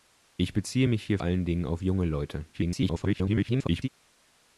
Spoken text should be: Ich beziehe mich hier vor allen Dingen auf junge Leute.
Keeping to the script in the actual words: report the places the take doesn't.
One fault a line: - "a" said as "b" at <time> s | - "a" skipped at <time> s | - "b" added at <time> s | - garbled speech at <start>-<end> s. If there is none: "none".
- "vor" skipped at 1.2 s
- garbled speech at 2.5-3.9 s